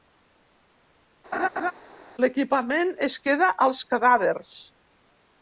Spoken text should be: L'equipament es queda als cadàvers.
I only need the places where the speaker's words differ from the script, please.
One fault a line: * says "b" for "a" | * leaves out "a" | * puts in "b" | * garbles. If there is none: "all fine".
all fine